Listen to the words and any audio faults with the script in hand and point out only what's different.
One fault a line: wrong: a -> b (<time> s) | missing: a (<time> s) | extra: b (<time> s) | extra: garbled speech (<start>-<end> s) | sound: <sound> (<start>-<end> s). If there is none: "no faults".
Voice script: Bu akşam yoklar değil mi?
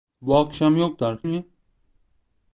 missing: değil (1.2 s)